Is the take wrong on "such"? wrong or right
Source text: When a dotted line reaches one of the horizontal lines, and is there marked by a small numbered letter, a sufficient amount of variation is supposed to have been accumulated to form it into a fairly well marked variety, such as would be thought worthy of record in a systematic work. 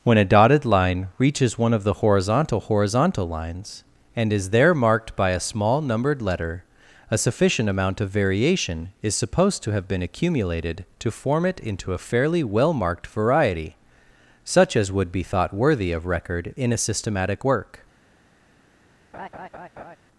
right